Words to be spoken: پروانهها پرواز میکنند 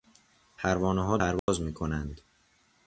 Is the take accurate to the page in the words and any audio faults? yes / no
no